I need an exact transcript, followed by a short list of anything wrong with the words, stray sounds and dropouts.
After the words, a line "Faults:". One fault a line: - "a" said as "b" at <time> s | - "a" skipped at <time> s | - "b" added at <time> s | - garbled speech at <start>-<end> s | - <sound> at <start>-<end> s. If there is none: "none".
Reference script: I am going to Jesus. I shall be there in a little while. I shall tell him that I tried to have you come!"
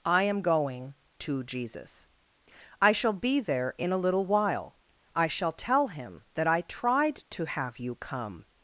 I am going to Jesus. I shall be there in a little while. I shall tell him that I tried to have you come!"
Faults:
none